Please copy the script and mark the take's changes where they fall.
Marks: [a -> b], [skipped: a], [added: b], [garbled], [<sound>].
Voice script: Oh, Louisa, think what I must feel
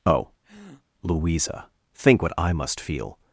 Oh, [breath] Louisa, think what I must feel